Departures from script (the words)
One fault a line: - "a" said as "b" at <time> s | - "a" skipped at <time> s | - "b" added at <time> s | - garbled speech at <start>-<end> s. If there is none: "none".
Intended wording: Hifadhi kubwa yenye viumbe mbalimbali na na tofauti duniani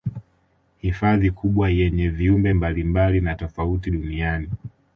- "na" skipped at 3.3 s